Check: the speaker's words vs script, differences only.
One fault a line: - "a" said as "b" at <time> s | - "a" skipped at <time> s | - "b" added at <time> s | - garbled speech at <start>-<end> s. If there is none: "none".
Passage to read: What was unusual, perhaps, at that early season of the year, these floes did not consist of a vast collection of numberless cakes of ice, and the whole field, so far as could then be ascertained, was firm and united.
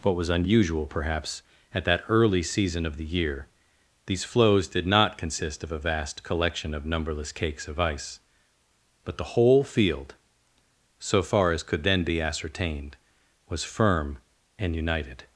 - "and" said as "but" at 9.1 s